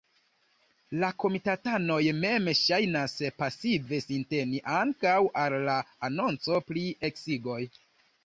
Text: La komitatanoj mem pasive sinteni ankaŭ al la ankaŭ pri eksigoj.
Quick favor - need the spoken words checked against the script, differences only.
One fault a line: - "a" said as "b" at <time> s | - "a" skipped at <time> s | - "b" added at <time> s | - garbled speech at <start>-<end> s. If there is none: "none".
- "ŝajnas" added at 2.6 s
- "ankaŭ" said as "anonco" at 6.1 s